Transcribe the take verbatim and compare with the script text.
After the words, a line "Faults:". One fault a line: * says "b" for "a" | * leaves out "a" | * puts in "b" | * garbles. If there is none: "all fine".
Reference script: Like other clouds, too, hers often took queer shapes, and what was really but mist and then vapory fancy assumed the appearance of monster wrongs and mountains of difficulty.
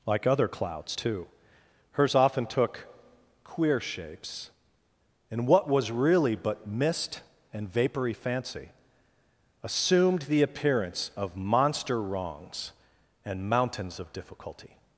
Like other clouds, too, hers often took queer shapes, and what was really but mist and vapory fancy assumed the appearance of monster wrongs and mountains of difficulty.
Faults:
* leaves out "then"